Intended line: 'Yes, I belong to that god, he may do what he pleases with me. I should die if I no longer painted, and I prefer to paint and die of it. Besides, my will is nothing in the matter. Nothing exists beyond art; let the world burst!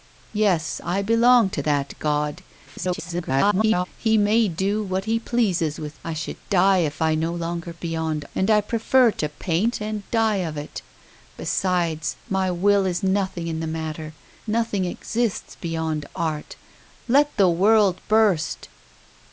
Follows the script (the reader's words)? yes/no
no